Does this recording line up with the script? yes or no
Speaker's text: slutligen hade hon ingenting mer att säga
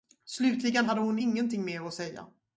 yes